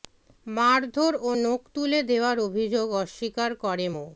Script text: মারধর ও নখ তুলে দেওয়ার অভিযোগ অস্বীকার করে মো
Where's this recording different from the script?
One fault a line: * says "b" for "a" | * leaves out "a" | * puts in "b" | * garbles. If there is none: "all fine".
all fine